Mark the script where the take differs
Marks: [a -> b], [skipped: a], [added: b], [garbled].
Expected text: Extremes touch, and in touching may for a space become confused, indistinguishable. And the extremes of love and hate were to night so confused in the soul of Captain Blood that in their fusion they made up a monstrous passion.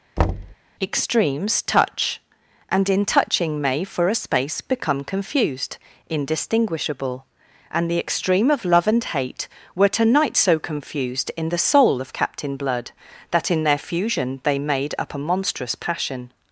Extremes touch, and in touching may for a space become confused, indistinguishable. And the [extremes -> extreme] of love and hate were to night so confused in the soul of Captain Blood that in their fusion they made up a monstrous passion.